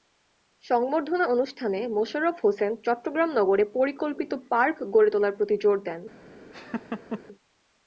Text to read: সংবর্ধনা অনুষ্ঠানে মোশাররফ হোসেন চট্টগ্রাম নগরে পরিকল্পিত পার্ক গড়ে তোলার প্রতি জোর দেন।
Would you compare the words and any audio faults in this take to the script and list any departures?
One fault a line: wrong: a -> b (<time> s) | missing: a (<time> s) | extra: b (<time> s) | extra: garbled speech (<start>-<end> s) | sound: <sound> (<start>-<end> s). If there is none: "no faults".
sound: laugh (6.5-7.2 s)